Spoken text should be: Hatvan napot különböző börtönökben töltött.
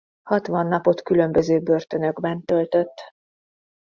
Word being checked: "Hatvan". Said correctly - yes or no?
yes